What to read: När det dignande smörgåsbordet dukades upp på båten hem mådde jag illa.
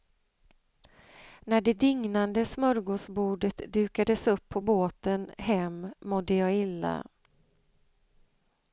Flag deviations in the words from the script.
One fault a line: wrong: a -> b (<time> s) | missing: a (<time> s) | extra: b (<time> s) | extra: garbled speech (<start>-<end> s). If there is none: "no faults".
no faults